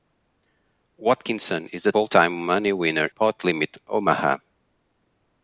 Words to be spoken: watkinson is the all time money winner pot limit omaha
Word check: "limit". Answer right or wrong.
right